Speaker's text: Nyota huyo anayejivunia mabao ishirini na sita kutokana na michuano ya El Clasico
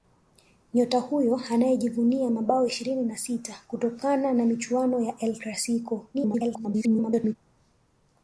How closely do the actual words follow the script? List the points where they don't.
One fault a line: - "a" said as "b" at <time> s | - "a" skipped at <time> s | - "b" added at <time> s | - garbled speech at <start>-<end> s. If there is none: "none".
- garbled speech at 6.1-7.4 s